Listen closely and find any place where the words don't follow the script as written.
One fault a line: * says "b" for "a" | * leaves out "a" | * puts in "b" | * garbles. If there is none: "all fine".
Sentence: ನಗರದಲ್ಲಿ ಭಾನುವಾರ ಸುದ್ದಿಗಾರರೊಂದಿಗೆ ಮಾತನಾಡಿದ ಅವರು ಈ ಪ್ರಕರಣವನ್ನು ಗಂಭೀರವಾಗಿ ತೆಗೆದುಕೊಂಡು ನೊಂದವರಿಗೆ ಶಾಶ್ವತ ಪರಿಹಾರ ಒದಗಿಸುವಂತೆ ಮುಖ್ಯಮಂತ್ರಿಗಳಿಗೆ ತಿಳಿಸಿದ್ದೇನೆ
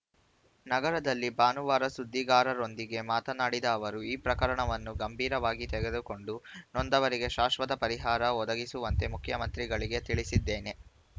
all fine